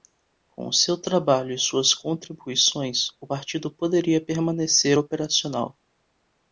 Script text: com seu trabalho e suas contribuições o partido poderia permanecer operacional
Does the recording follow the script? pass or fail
pass